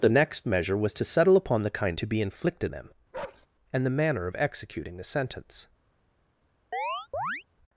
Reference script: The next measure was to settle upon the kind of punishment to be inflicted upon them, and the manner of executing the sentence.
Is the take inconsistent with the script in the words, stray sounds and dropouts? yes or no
yes